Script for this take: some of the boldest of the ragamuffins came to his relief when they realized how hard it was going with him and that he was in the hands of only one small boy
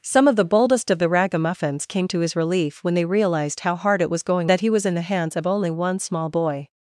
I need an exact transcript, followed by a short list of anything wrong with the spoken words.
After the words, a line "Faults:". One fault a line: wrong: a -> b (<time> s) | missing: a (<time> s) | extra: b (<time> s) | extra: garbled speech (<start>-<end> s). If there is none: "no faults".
some of the boldest of the ragamuffins came to his relief when they realized how hard it was going that he was in the hands of only one small boy
Faults:
missing: with him and (4.5 s)